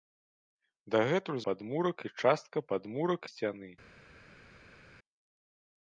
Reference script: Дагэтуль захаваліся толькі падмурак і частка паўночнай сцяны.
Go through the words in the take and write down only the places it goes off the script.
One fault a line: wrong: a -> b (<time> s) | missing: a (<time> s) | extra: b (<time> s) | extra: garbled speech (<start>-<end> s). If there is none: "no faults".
missing: захаваліся толькі (1.4 s)
wrong: паўночнай -> падмурак (2.7 s)